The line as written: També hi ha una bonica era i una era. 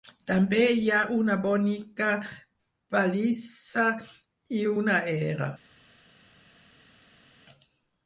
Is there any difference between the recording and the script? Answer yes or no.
yes